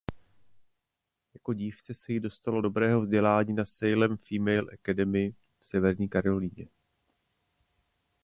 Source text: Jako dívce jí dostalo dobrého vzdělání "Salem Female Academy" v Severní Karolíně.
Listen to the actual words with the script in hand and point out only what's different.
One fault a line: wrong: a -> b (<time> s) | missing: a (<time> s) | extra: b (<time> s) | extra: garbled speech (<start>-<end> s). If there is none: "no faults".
extra: se (1.9 s)
extra: na (3.5 s)